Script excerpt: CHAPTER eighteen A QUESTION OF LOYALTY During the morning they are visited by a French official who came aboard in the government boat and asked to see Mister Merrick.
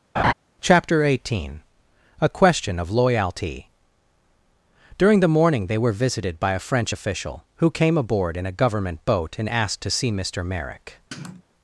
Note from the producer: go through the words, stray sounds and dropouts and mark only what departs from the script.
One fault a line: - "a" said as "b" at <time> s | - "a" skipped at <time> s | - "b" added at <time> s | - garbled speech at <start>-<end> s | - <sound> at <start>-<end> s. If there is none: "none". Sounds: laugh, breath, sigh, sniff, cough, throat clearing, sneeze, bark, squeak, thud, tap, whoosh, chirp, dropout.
- laugh at 0.2-0.3 s
- "are" said as "were" at 5.8 s
- "the" said as "a" at 8.4 s
- sniff at 11.1-11.4 s